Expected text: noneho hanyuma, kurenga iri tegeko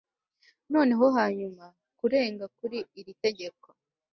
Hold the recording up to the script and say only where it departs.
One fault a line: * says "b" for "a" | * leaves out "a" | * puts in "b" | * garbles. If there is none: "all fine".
* puts in "kuri"